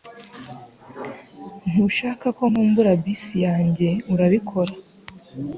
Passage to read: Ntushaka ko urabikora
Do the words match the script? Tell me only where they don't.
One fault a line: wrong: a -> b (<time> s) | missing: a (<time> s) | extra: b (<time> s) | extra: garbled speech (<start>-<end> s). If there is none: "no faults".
extra: nkumbura bisi yanjye (2.5 s)